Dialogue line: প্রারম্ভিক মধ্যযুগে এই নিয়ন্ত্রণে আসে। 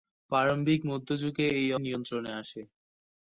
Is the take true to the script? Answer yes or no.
yes